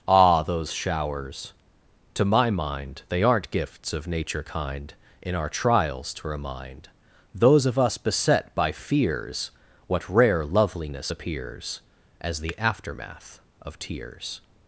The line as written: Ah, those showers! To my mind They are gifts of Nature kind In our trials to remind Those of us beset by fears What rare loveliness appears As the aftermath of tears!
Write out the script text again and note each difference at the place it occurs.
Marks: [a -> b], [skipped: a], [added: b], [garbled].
Ah, those showers! To my mind They [are -> aren't] gifts of Nature kind In our trials to remind Those of us beset by fears What rare loveliness appears As the aftermath of tears!